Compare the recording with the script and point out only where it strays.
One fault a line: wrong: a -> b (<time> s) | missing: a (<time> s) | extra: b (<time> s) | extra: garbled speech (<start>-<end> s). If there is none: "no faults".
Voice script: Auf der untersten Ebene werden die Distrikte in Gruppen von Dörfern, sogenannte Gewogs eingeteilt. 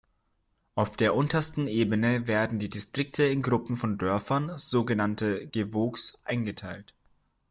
no faults